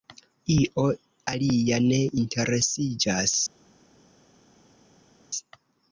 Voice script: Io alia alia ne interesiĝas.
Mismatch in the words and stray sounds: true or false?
true